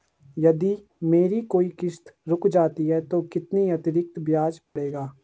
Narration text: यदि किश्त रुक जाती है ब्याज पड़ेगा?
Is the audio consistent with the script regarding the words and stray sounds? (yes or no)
no